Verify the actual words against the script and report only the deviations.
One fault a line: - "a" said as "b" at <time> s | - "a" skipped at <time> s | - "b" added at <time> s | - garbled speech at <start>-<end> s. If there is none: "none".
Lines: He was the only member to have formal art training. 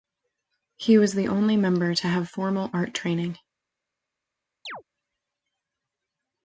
none